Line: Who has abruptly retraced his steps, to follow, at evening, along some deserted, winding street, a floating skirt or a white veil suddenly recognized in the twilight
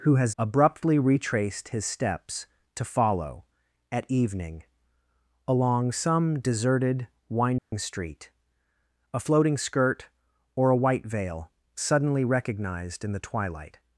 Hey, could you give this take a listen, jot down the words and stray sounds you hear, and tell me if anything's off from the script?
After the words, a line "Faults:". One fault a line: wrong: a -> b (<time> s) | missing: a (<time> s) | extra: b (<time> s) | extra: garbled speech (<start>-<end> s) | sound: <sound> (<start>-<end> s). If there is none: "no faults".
Who has abruptly retraced his steps, to follow, at evening, along some deserted, winding street, a floating skirt or a white veil suddenly recognized in the twilight
Faults:
sound: dropout (7.6-7.7 s)